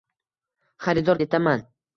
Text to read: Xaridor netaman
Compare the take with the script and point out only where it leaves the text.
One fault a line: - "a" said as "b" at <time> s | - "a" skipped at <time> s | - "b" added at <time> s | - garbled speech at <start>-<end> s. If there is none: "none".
none